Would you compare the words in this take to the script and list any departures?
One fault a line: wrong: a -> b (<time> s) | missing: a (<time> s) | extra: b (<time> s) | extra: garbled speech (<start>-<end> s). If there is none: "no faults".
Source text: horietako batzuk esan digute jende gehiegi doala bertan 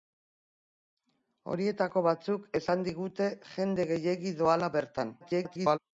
extra: garbled speech (5.2-5.8 s)